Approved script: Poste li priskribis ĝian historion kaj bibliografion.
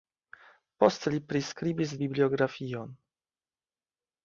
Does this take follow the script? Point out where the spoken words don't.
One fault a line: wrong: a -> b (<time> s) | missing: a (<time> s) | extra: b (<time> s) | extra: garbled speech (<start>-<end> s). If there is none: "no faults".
missing: ĝian historion kaj (1.9 s)